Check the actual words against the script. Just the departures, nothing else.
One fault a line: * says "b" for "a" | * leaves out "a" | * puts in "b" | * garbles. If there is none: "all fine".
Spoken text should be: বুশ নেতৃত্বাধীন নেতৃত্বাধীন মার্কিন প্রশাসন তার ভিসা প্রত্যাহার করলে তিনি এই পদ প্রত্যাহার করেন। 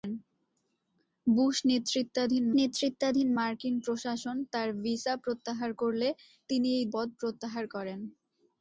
all fine